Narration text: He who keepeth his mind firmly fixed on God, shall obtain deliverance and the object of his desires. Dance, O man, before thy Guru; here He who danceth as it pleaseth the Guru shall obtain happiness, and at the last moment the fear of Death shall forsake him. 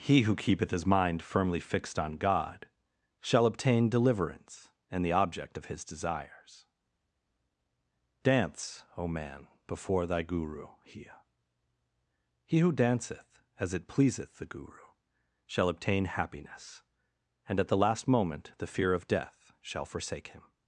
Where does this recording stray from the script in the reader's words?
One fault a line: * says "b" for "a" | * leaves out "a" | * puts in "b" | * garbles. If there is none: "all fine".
all fine